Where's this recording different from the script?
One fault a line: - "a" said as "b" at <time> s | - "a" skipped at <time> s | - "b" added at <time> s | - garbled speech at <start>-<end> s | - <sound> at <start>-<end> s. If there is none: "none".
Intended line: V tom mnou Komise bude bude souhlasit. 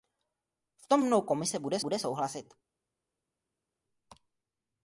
none